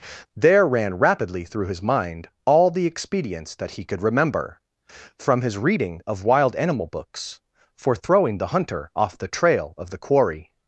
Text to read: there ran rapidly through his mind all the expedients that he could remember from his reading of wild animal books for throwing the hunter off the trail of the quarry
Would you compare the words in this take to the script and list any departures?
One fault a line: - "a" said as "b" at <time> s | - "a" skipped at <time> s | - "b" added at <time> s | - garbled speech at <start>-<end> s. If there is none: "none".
none